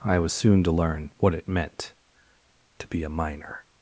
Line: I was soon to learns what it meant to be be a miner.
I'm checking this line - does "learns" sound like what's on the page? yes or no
no